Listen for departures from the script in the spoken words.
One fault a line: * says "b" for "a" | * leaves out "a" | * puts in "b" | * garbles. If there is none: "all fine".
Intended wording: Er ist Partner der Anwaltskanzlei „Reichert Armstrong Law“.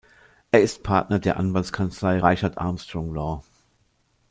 all fine